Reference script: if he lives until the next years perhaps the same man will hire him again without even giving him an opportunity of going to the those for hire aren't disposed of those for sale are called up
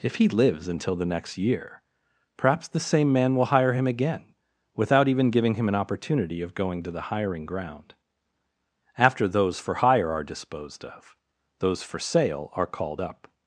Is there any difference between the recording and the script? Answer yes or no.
yes